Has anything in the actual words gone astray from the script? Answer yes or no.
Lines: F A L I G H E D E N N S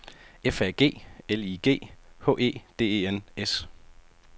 yes